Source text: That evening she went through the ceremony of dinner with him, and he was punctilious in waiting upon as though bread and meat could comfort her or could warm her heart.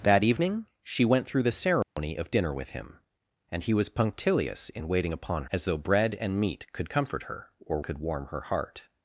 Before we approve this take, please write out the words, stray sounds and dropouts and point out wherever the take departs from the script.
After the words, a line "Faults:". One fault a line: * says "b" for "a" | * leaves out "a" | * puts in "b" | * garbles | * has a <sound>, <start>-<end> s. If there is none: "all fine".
That evening she went through the ceremony of dinner with him, and he was punctilious in waiting upon as though bread and meat could comfort her or could warm her heart.
Faults:
* has a dropout, 1.8-2.0 s